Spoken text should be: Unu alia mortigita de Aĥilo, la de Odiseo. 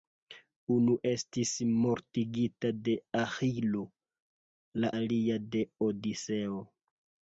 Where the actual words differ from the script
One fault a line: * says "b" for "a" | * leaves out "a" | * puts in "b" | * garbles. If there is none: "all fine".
* says "estis" for "alia"
* puts in "alia"